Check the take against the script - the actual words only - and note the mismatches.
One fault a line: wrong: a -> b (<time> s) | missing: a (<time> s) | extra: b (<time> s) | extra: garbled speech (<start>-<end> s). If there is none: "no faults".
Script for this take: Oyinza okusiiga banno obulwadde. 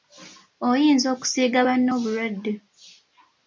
no faults